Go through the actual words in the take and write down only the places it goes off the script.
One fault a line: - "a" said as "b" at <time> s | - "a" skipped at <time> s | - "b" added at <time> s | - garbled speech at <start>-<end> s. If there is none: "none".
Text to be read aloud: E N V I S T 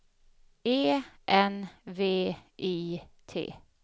- "S" skipped at 3.0 s